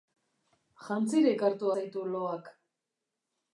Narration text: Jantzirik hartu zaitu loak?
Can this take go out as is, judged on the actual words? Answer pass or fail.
pass